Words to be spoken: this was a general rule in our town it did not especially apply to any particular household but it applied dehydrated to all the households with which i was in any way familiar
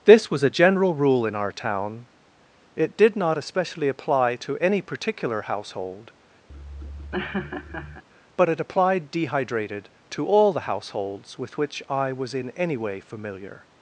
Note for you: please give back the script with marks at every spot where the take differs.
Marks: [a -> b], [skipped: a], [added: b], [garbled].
this was a general rule in our town it did not especially apply to any particular household but it applied dehydrated to all the households with which i was in any way familiar